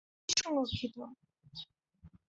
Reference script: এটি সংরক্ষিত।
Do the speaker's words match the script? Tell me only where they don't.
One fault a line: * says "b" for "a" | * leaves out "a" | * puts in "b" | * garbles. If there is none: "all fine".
all fine